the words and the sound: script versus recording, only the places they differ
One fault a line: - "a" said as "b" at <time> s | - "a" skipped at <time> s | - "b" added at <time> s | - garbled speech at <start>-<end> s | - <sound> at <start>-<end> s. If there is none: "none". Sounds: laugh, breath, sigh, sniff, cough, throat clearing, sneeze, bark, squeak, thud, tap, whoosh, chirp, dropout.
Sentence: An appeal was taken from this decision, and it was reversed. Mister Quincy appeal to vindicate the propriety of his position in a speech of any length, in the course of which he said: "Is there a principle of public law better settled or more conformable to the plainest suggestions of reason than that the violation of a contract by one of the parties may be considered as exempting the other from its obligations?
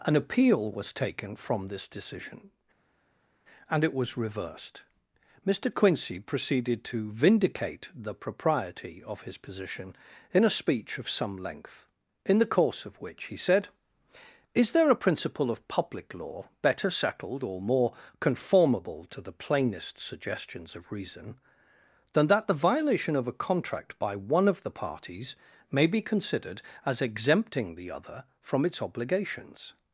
- "appeal" said as "proceeded" at 6.2 s
- "any" said as "some" at 11.1 s